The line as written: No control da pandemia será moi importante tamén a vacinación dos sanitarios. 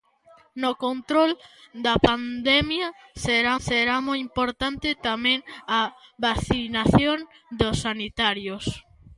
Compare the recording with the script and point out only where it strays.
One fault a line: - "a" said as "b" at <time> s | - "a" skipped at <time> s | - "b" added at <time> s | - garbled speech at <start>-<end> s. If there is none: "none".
- "será" added at 3.7 s